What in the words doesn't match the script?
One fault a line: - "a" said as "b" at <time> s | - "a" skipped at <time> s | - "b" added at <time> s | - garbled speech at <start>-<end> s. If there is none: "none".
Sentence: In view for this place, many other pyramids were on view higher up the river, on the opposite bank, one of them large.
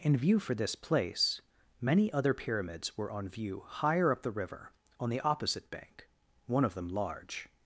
none